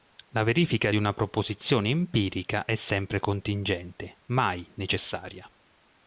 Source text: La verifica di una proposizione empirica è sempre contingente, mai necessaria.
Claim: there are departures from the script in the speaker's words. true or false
false